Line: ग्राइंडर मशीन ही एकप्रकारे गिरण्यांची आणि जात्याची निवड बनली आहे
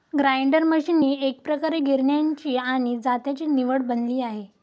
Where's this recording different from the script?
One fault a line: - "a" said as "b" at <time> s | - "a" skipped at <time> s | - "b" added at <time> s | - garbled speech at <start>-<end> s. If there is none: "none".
none